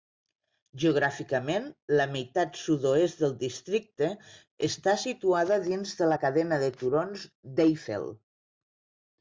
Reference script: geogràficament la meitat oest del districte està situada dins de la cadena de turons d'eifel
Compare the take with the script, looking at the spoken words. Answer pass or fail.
fail